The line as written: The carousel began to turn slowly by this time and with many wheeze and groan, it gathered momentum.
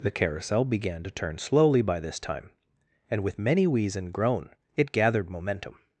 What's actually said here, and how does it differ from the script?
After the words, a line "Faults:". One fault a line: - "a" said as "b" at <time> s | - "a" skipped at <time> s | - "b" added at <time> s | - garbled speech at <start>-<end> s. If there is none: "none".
The carousel began to turn slowly by this time and with many wheeze and groan, it gathered momentum.
Faults:
none